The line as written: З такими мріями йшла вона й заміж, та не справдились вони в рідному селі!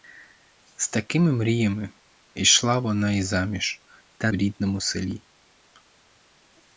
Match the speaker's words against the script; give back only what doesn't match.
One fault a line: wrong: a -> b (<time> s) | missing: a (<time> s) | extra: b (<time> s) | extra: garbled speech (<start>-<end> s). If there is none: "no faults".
missing: не справдились вони (4.3 s)